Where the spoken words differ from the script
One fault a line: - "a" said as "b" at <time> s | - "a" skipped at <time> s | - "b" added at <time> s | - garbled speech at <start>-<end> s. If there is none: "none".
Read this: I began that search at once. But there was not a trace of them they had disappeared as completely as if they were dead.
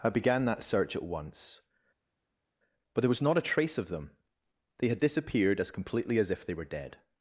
none